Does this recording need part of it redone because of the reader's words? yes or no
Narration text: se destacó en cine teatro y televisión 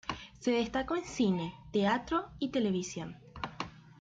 no